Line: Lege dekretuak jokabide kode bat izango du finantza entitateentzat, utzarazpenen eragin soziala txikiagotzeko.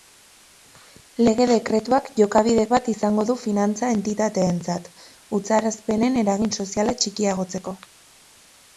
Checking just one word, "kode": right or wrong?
wrong